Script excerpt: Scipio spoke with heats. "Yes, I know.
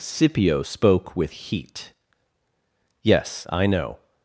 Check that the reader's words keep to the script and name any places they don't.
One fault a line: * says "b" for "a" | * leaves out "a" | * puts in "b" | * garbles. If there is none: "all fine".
* says "heat" for "heats"